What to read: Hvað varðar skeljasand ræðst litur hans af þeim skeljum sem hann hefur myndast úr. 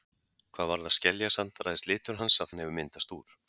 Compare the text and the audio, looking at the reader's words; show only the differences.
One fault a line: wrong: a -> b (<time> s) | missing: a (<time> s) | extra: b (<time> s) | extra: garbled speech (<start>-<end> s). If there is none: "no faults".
missing: þeim skeljum sem (2.6 s)